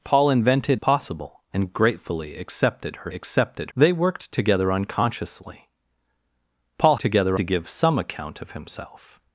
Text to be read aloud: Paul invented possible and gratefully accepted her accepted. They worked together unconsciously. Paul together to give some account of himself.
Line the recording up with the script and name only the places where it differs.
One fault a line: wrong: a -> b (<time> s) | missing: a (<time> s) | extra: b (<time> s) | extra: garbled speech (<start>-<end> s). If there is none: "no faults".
no faults